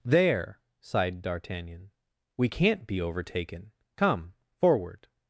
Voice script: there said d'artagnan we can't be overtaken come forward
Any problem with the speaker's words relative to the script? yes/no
yes